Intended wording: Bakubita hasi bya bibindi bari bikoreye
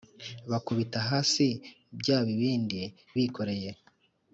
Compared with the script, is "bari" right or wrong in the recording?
wrong